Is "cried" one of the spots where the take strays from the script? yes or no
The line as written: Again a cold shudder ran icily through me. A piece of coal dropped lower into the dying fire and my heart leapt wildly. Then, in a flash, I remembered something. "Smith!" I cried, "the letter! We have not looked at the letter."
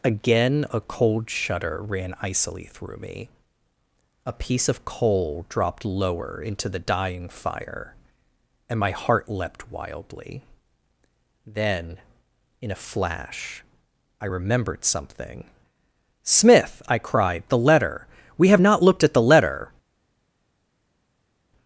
no